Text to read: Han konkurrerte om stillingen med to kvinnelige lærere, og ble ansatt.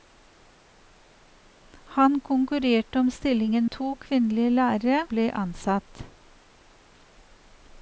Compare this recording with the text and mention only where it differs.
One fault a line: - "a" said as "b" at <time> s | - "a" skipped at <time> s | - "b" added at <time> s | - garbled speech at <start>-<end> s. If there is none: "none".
- "med" skipped at 3.7 s
- "og" skipped at 5.1 s